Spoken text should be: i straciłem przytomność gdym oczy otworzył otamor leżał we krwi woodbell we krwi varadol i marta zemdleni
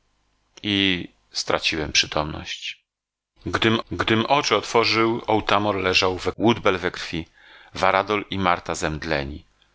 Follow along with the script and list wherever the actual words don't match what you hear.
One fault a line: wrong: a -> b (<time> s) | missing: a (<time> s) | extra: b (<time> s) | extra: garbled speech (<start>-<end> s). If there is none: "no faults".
extra: gdym (3.9 s)
missing: krwi (6.3 s)